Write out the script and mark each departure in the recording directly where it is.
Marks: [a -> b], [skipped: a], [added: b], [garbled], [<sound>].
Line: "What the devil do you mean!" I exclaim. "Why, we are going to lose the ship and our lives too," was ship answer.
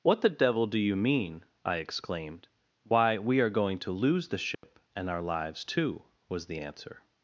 "What the devil do you mean!" I [exclaim. -> exclaimed] "Why, we are going to lose the ship [dropout] and our lives too," was [ship -> the] answer.